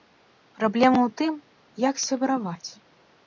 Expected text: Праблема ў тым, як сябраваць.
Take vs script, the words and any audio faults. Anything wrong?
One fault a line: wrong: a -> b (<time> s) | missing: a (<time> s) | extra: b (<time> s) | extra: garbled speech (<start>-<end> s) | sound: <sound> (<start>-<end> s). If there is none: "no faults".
no faults